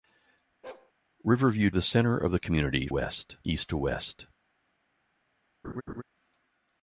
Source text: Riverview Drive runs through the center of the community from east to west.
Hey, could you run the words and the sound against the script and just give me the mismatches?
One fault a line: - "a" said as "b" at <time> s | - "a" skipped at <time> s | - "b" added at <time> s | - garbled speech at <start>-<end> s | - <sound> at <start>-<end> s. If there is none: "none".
- bark at 0.6-0.9 s
- "Drive runs through" skipped at 1.7 s
- "from" said as "west" at 2.9 s
- laugh at 5.6-6.0 s